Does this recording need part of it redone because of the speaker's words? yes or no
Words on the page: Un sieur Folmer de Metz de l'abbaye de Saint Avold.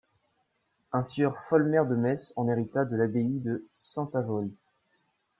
yes